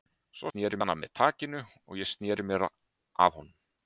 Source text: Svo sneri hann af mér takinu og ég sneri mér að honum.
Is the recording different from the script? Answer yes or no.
no